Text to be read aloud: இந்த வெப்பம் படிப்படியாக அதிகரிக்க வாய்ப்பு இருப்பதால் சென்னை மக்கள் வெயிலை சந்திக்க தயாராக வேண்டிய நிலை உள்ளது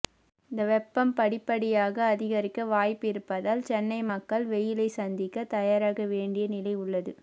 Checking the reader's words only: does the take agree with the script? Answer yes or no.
yes